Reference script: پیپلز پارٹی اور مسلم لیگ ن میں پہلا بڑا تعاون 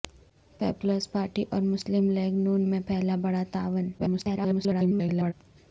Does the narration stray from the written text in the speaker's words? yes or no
yes